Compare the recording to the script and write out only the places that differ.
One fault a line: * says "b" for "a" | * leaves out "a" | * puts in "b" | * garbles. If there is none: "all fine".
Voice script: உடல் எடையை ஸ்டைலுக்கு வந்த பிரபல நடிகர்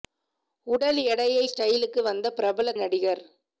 all fine